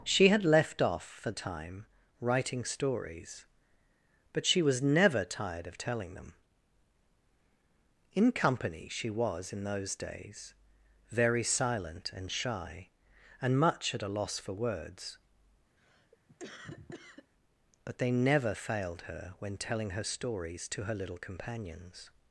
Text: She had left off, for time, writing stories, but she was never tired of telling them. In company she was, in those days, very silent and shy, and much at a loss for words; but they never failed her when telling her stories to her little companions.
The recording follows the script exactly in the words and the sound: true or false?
false